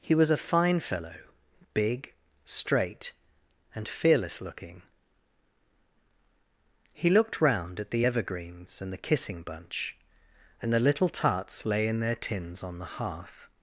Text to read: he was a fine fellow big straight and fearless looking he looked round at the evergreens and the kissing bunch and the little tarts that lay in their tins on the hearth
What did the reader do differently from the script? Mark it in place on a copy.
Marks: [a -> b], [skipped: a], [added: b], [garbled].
he was a fine fellow big straight and fearless looking he looked round at the evergreens and the kissing bunch and the little tarts [skipped: that] lay in their tins on the hearth